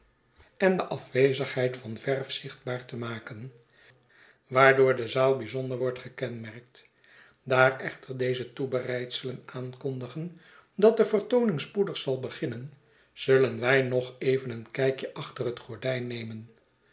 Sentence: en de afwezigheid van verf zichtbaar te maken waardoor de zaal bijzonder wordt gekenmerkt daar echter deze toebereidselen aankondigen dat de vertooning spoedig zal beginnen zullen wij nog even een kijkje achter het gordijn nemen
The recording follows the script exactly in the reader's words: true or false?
true